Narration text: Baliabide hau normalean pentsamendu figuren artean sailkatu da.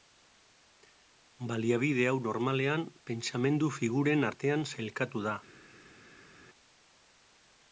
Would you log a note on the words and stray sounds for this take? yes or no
no